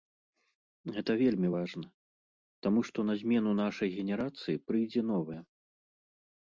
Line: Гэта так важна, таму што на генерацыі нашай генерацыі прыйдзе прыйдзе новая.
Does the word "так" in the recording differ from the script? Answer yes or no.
yes